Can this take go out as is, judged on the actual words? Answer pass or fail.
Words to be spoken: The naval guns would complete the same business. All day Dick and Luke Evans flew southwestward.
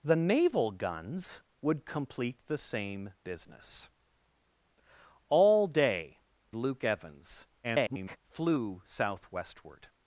fail